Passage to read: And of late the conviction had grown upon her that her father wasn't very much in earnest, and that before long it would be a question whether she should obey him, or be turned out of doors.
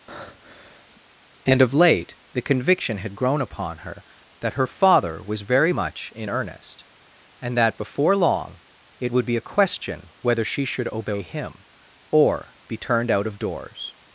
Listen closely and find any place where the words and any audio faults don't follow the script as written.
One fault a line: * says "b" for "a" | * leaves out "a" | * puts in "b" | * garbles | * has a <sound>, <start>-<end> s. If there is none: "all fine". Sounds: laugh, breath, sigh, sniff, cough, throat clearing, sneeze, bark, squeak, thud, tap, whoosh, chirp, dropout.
* has a breath, 0.1-1.0 s
* says "was" for "wasn't"